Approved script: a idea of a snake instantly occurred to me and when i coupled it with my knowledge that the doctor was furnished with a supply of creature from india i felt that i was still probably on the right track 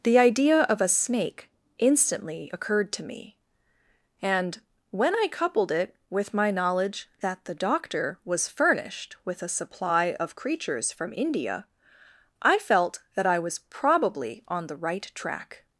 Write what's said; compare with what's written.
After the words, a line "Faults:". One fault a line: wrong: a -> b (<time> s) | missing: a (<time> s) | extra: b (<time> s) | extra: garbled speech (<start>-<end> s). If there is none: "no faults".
the idea of a snake instantly occurred to me and when i coupled it with my knowledge that the doctor was furnished with a supply of creatures from india i felt that i was probably on the right track
Faults:
wrong: a -> the (0.0 s)
wrong: creature -> creatures (10.4 s)
missing: still (13.6 s)